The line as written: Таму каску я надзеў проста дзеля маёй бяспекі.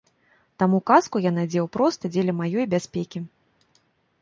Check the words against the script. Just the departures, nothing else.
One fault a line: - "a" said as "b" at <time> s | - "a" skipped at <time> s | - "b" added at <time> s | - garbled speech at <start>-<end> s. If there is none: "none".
none